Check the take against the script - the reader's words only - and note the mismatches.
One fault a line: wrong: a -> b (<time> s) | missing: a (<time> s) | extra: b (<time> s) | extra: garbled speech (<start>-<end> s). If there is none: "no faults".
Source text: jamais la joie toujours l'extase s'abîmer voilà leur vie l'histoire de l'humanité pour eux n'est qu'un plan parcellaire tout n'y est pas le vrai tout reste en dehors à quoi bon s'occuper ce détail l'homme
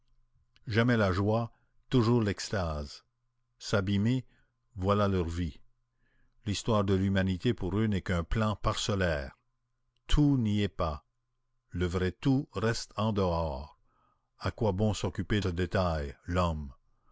no faults